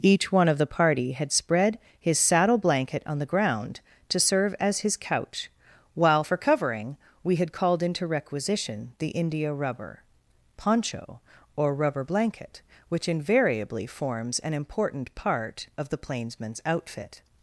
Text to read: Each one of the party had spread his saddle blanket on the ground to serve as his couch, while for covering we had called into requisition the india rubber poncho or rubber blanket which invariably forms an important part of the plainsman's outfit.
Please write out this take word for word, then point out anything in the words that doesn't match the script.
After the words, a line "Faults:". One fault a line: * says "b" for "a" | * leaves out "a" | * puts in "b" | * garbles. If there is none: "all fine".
Each one of the party had spread his saddle blanket on the ground to serve as his couch, while for covering we had called into requisition the india rubber poncho or rubber blanket which invariably forms an important part of the plainsman's outfit.
Faults:
all fine